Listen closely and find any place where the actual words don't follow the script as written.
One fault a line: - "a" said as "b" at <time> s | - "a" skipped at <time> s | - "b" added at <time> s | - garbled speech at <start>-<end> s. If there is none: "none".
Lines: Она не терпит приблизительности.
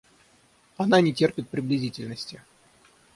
none